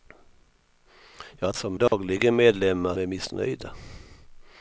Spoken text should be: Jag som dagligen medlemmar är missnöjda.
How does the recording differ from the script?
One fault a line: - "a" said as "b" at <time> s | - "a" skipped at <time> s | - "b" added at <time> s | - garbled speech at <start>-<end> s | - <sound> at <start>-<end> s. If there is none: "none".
- dropout at 1.9-1.9 s